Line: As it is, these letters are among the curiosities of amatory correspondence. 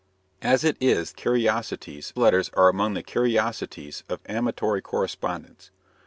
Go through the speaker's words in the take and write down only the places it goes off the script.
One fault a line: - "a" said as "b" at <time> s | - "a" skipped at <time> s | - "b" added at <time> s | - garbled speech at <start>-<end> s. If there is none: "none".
- "these" said as "curiosities" at 1.1 s